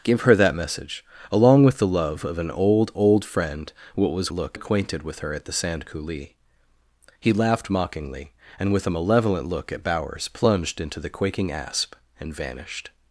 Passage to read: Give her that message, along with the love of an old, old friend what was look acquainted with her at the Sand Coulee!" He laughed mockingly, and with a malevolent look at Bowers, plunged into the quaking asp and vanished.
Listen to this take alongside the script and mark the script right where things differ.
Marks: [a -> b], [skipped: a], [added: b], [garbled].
Give her that message, along with the love of an old, old friend what was look acquainted with her at the Sand Coulee!" He laughed mockingly, and with a malevolent look at Bowers, plunged into the quaking asp and vanished.